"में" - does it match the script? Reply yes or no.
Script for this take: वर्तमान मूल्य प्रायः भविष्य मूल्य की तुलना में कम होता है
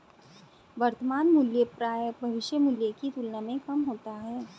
yes